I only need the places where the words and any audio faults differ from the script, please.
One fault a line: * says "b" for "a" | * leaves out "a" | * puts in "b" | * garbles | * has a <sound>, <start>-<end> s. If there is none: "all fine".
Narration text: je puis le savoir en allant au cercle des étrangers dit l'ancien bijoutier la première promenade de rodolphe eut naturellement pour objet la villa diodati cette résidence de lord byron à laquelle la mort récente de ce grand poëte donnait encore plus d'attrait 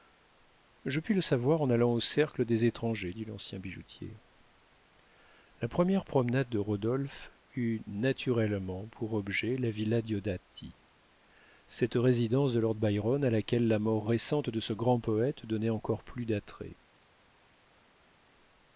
all fine